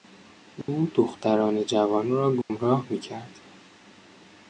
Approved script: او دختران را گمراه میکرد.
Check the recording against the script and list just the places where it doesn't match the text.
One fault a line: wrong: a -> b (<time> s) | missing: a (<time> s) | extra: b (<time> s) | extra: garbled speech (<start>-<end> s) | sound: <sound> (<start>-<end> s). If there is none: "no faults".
sound: dropout (0.6-0.7 s)
extra: جوان (1.6 s)
sound: dropout (2.4-2.5 s)